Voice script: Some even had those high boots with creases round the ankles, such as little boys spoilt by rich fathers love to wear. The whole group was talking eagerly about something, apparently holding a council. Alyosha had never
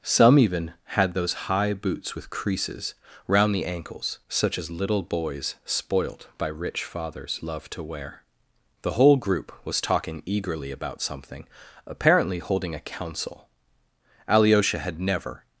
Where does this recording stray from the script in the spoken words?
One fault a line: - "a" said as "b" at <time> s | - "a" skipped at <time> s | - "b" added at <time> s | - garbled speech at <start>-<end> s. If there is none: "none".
none